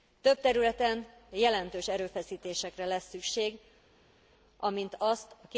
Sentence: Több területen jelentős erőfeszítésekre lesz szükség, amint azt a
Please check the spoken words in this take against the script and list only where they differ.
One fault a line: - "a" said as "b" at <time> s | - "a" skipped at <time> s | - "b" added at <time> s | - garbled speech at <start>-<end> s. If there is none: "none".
none